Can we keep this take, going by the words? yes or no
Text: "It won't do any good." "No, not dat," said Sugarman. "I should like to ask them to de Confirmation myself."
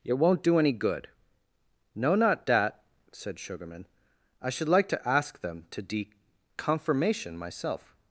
yes